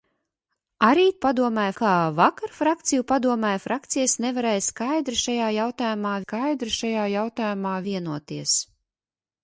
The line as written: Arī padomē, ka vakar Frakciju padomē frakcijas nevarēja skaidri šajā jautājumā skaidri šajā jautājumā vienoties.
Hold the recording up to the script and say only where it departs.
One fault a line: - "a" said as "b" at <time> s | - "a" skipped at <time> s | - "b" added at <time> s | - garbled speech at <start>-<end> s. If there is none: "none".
none